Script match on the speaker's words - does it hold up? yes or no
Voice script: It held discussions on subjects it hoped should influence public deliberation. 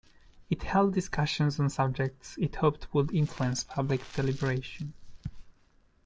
no